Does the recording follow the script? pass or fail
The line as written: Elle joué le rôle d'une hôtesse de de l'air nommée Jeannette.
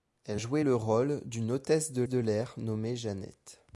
pass